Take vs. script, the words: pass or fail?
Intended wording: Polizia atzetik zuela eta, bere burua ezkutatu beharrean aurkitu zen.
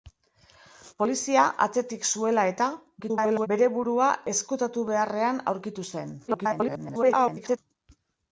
fail